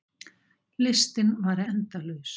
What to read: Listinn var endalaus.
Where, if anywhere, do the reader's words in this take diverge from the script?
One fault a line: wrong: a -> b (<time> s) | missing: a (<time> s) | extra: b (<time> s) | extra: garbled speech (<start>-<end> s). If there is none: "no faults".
no faults